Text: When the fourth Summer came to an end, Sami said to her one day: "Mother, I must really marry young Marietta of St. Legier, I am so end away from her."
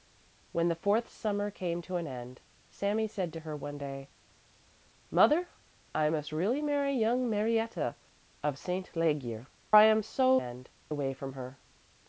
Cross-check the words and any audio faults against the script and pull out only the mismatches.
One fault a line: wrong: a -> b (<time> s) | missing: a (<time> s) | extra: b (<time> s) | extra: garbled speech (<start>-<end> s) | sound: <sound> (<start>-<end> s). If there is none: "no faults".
no faults